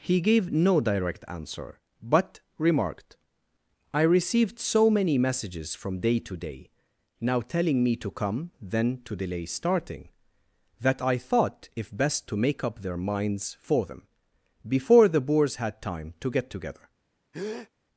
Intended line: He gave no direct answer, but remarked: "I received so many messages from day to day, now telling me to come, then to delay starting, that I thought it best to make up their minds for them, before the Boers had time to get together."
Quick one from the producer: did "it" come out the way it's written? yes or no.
no